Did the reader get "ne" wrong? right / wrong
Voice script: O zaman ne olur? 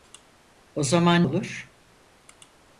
wrong